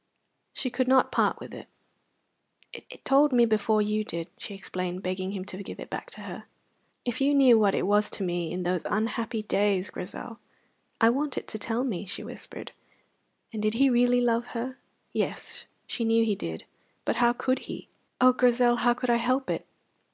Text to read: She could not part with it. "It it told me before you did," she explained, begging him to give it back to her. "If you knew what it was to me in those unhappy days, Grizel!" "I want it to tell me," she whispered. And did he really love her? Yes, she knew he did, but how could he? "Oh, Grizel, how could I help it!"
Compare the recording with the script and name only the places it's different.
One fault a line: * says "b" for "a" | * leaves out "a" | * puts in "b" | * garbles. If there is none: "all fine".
all fine